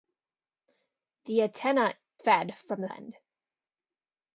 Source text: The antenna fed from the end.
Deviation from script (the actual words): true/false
false